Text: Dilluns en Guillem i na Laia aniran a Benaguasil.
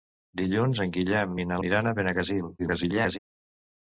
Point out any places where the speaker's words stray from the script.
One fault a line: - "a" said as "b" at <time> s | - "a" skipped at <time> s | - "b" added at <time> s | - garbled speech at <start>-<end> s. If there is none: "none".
- "Laia" skipped at 1.6 s
- garbled speech at 2.6-3.2 s